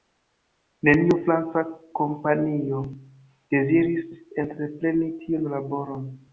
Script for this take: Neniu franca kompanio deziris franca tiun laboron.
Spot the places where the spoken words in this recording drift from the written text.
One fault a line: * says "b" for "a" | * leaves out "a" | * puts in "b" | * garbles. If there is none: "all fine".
* says "entrepreni" for "franca"